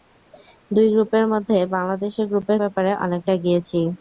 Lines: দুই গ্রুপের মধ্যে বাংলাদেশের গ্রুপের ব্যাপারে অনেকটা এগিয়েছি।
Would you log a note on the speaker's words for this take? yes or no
no